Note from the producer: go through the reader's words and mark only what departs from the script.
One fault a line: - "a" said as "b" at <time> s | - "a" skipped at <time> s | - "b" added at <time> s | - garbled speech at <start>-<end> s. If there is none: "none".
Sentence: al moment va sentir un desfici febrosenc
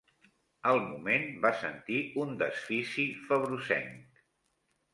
none